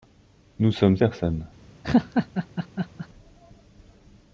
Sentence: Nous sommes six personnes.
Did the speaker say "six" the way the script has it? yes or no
no